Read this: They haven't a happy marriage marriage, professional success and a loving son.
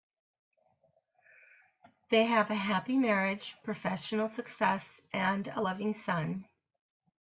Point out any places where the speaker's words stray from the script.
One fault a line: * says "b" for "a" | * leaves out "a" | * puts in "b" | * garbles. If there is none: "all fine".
* says "have" for "haven't"
* leaves out "marriage"